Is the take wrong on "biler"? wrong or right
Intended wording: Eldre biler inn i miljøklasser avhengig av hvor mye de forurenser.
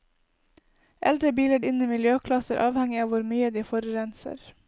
right